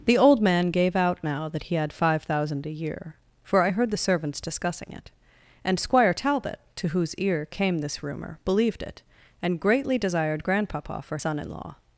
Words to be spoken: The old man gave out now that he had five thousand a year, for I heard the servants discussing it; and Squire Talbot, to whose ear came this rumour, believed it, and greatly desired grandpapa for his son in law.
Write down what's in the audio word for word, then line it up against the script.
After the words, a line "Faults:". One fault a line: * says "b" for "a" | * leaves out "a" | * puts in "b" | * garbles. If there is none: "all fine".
The old man gave out now that he had five thousand a year, for I heard the servants discussing it; and Squire Talbot, to whose ear came this rumour, believed it, and greatly desired grandpapa for son in law.
Faults:
* leaves out "his"